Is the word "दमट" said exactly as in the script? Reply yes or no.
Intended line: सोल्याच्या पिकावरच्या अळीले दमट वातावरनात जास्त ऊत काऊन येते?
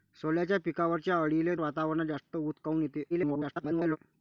no